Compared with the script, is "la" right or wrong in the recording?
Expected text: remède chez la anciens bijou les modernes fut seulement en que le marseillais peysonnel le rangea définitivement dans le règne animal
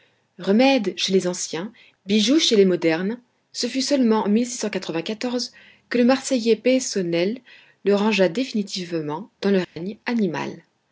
wrong